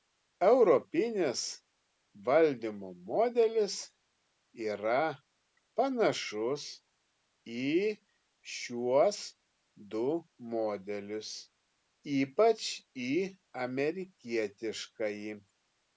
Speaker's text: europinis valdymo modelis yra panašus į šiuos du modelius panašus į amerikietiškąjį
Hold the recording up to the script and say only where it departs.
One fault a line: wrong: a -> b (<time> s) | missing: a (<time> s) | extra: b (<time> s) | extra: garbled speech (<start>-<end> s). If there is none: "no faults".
wrong: panašus -> ypač (12.2 s)